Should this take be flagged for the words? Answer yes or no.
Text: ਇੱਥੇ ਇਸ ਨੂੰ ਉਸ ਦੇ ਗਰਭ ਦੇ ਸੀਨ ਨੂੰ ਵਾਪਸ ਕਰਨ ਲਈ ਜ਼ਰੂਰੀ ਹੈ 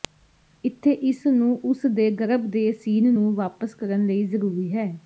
no